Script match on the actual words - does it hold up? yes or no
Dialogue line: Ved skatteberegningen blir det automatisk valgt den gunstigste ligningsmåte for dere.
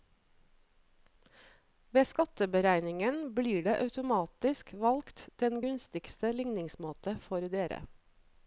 yes